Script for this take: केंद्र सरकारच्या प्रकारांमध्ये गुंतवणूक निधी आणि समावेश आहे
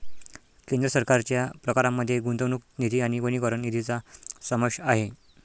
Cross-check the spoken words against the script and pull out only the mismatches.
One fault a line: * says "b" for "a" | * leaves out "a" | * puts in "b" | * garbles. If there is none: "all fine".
* puts in "वनीकरण निधीचा"